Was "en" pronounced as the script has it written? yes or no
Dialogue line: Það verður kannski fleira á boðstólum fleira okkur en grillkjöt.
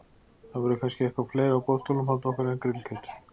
yes